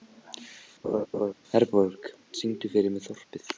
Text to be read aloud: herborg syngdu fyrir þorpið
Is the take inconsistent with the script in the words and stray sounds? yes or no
yes